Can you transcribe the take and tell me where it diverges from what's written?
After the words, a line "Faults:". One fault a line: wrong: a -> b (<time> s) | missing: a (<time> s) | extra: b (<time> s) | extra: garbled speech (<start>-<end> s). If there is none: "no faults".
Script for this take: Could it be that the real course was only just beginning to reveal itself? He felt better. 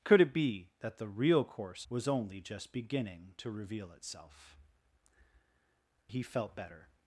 Could it be that the real course was only just beginning to reveal itself? He felt better.
Faults:
no faults